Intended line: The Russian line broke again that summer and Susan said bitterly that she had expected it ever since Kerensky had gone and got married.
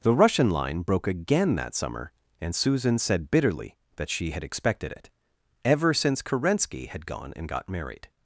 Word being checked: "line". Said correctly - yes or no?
yes